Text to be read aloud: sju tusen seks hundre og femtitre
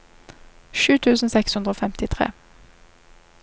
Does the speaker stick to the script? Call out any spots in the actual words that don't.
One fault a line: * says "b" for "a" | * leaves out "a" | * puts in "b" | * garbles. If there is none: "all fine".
all fine